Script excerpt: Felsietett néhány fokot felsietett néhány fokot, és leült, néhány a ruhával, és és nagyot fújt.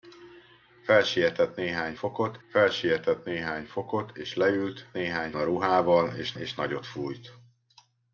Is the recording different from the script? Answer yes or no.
no